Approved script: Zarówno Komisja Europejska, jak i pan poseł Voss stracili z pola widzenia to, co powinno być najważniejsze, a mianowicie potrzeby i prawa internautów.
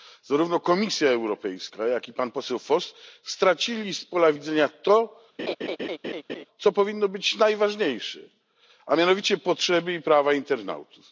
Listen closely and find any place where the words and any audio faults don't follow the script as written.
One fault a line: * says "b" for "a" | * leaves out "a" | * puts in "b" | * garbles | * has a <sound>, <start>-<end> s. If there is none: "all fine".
* has a laugh, 5.4-6.5 s